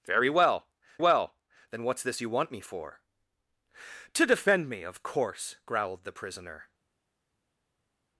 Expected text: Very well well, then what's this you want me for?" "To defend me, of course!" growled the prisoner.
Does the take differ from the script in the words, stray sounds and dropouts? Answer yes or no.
no